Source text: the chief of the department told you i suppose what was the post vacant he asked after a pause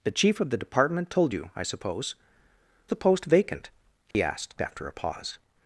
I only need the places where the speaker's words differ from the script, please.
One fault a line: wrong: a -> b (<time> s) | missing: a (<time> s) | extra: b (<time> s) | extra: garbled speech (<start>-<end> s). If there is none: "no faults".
missing: what was (2.1 s)